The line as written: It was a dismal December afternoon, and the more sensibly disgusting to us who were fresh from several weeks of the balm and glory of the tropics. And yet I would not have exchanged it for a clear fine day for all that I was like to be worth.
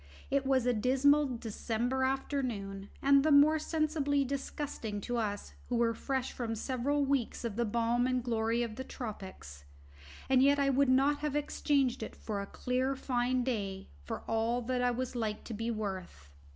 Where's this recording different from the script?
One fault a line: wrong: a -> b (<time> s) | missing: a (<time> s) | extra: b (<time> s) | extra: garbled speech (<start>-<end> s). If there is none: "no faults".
no faults